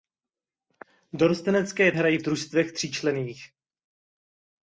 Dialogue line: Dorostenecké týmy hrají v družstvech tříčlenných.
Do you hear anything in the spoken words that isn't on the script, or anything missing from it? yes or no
yes